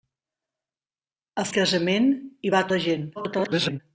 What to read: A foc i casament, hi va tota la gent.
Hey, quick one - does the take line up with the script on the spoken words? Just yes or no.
no